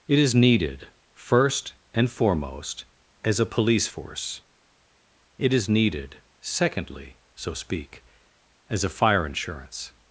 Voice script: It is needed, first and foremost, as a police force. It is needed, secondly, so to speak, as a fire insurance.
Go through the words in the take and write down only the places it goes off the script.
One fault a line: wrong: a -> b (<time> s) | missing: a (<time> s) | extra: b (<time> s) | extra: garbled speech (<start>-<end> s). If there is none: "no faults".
missing: to (7.5 s)